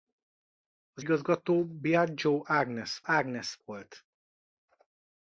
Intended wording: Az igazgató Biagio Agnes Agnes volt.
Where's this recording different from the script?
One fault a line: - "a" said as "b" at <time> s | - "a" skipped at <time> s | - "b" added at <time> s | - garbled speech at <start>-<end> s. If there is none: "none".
none